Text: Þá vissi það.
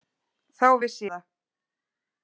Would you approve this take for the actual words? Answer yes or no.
yes